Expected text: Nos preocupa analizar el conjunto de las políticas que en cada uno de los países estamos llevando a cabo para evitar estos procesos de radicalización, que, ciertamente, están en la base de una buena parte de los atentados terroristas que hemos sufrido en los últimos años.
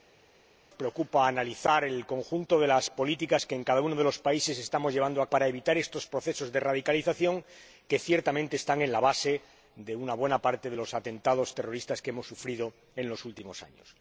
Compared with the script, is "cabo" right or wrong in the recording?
wrong